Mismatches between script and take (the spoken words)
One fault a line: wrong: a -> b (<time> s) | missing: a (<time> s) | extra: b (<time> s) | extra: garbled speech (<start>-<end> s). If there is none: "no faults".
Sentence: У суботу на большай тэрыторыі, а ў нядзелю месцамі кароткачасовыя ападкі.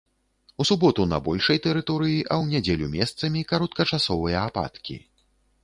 no faults